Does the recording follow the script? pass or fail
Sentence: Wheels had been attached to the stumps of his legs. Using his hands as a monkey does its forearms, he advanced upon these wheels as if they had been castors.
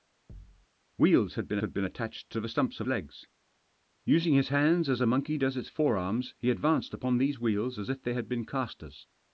fail